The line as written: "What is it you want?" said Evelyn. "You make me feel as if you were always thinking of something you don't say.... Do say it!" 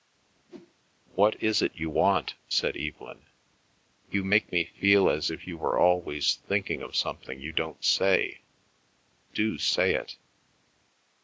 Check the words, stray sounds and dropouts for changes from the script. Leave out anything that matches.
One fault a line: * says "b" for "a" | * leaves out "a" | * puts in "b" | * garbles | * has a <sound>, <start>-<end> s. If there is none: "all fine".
* has a whoosh, 0.5-0.8 s